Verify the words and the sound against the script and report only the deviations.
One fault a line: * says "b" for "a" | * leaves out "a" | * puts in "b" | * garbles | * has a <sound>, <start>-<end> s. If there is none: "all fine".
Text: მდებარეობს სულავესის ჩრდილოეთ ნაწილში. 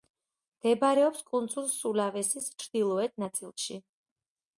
* puts in "კუნძულ"